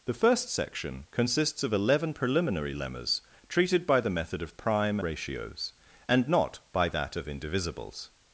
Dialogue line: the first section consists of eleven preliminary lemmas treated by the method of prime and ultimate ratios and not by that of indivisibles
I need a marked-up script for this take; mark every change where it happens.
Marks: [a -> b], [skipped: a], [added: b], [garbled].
the first section consists of eleven preliminary lemmas treated by the method of prime [skipped: and ultimate] ratios and not by that of indivisibles